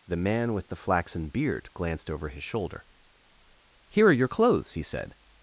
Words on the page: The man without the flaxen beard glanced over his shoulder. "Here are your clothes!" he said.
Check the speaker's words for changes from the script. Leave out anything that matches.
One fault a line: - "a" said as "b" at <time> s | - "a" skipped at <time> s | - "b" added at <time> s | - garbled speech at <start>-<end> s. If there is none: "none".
- "without" said as "with" at 0.5 s